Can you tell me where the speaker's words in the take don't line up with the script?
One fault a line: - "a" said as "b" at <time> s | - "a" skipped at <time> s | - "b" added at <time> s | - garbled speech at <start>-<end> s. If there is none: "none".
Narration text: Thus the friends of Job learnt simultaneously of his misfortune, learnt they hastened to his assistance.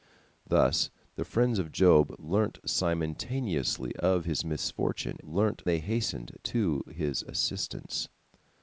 none